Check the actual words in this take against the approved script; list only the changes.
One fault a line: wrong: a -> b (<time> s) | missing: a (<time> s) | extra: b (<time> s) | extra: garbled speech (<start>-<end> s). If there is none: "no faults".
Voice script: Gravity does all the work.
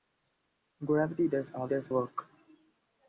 wrong: the -> does (1.7 s)